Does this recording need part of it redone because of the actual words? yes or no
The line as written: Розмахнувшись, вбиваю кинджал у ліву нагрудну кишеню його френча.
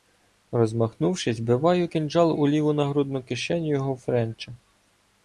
no